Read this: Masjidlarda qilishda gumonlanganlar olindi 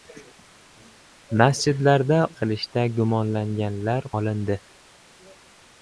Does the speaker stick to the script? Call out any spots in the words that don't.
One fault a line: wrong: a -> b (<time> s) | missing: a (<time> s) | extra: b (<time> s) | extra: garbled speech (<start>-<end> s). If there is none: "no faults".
no faults